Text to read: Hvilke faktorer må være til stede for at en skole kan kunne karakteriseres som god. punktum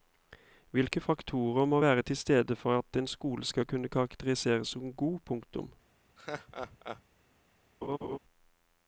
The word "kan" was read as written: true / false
false